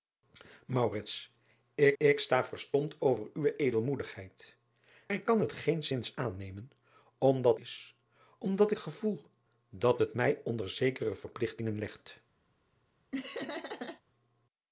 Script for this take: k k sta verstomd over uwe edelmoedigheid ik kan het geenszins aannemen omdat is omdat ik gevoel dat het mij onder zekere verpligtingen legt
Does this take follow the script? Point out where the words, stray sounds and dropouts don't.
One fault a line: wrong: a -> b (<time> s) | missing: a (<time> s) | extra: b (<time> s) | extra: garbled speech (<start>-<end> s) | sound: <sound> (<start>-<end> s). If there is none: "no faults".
sound: laugh (13.1-14.0 s)